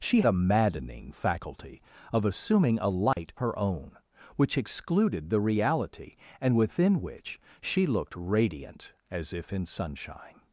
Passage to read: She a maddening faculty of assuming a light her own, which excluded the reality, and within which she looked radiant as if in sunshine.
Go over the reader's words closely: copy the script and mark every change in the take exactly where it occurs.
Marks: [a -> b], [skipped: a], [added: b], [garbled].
She a maddening faculty of assuming a light her own, which excluded the reality, and within which she looked radiant as if in sunshine.